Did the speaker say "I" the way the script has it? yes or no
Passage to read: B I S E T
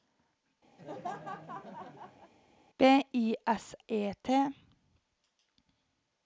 yes